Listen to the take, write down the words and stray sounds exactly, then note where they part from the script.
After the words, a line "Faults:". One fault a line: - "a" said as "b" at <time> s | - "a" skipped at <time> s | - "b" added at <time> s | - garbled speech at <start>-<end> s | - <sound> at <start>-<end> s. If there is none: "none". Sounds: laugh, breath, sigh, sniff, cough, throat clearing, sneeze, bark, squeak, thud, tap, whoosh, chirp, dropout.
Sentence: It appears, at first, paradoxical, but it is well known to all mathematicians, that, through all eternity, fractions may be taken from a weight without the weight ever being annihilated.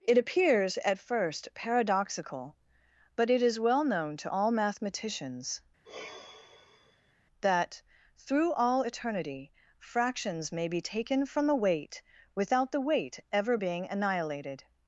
It appears, at first, paradoxical, but it is well known to all mathematicians, that, through all eternity, fractions may be taken from the weight without the weight ever being annihilated.
Faults:
- sigh at 5.8-7.1 s
- "a" said as "the" at 11.5 s